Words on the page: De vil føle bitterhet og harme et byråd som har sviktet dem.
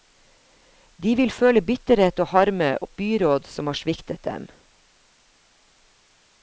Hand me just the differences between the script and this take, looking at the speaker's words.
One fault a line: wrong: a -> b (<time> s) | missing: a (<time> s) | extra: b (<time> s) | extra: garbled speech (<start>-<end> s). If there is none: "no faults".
no faults